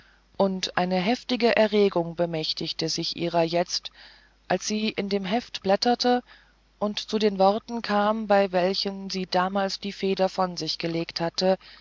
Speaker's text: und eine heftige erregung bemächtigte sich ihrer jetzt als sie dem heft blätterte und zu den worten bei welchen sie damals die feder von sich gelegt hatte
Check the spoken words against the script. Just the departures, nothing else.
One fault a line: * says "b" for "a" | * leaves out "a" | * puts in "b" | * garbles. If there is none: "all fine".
* puts in "in"
* puts in "kam"